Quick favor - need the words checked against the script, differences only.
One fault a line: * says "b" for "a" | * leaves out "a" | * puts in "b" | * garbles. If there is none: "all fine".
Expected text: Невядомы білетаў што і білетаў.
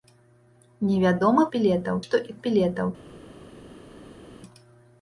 all fine